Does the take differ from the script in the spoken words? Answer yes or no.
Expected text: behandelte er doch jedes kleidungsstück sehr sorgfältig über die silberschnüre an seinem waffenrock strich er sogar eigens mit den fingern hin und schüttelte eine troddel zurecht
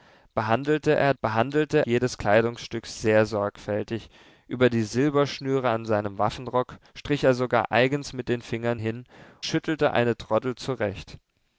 yes